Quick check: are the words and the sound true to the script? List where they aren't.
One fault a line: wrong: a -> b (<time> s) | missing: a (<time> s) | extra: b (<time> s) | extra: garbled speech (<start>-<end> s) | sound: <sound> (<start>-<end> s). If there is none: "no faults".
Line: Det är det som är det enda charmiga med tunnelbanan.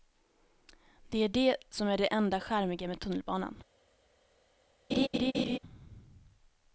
sound: laugh (4.9-5.6 s)